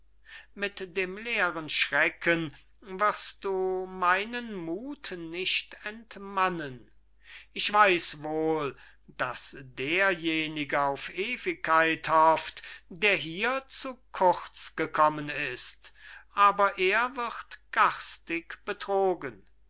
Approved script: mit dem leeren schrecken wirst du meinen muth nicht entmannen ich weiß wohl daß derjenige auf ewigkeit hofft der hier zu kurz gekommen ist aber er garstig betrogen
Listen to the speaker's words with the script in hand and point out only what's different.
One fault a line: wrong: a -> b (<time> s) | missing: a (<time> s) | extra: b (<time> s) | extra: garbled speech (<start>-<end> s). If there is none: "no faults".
extra: wird (17.2 s)